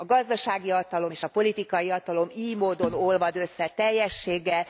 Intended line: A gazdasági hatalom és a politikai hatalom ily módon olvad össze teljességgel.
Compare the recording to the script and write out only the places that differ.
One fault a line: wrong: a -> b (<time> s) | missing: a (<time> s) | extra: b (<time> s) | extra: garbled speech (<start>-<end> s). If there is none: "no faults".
no faults